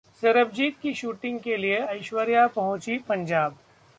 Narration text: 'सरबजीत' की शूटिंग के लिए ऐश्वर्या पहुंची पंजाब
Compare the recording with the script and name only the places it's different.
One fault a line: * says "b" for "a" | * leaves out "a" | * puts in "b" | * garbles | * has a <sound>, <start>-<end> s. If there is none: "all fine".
all fine